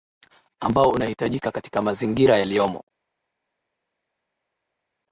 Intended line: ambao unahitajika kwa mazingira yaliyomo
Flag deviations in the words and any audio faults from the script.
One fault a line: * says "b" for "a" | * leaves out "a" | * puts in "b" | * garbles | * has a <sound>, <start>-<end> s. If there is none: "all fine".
* says "katika" for "kwa"